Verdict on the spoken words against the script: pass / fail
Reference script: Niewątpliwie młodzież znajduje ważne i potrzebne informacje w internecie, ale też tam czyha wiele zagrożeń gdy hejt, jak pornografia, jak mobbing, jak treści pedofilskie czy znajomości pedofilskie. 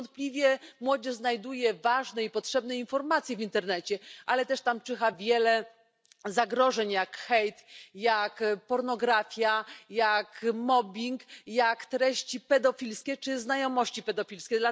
fail